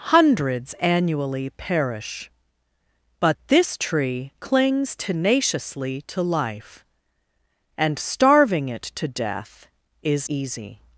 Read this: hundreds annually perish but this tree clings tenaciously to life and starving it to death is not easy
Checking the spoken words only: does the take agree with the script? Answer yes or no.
no